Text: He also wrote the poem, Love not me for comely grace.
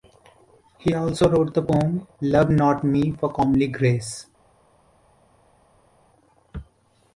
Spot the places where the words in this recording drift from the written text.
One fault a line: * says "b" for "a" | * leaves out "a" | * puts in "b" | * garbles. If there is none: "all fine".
all fine